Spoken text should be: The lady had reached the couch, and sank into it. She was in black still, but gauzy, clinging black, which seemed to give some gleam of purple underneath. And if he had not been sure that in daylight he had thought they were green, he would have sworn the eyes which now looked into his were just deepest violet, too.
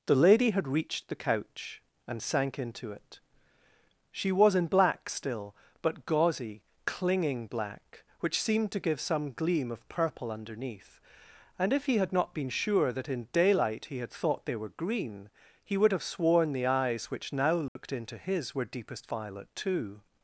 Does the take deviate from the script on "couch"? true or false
false